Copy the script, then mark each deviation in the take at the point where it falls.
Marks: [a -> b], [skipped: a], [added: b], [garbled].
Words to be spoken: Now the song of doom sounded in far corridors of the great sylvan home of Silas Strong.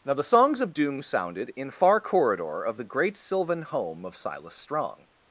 Now the [song -> songs] of doom sounded in far [corridors -> corridor] of the great sylvan home of Silas Strong.